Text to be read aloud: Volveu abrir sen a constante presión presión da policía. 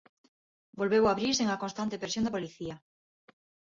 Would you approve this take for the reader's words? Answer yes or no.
no